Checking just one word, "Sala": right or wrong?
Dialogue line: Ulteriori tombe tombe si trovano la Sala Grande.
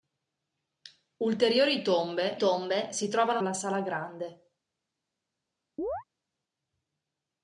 right